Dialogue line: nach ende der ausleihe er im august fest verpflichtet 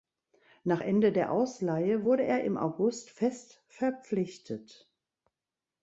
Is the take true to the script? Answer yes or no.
no